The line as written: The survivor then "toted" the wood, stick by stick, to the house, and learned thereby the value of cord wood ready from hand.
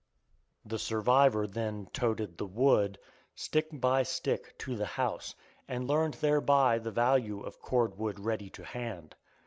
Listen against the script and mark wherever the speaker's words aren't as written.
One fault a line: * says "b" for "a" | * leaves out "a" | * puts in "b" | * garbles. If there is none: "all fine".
* says "to" for "from"